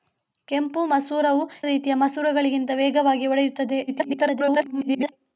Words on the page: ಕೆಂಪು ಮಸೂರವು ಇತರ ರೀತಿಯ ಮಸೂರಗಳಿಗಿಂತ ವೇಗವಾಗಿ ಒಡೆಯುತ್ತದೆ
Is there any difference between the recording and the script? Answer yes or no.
yes